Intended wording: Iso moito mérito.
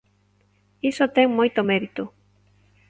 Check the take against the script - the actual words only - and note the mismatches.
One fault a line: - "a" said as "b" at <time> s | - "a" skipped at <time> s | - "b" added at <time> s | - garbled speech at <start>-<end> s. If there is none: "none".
- "ten" added at 1.1 s